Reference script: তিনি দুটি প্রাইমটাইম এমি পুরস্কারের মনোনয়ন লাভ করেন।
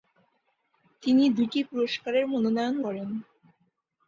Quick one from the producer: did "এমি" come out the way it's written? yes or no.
no